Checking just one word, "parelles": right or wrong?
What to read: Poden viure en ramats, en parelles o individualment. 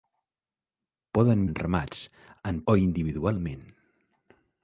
wrong